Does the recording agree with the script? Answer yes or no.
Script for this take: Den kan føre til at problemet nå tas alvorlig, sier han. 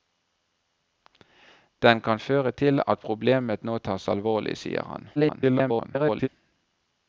no